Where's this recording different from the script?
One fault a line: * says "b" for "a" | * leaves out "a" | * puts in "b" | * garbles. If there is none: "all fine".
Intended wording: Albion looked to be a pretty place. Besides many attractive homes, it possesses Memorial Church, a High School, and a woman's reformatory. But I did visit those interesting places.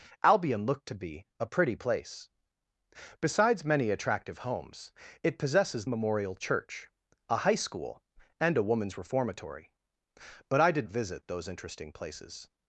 all fine